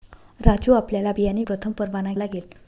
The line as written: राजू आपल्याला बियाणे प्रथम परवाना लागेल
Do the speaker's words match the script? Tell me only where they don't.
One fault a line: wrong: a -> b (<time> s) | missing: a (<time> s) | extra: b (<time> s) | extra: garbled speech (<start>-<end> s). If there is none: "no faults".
no faults